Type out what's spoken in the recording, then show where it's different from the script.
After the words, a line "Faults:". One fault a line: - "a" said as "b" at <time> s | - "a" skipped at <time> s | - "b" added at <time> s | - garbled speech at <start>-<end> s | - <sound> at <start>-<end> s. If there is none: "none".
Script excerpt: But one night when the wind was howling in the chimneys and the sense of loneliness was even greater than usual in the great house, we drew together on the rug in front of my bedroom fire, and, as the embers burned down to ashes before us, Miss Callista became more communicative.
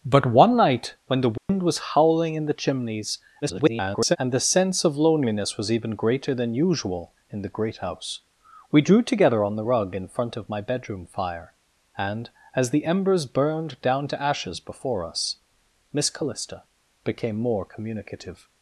But one night when the wind was howling in the chimneys [garbled] and the sense of loneliness was even greater than usual in the great house, we drew together on the rug in front of my bedroom fire, and, as the embers burned down to ashes before us, Miss Callista became more communicative.
Faults:
- dropout at 1.4-1.5 s
- garbled speech at 3.4-4.2 s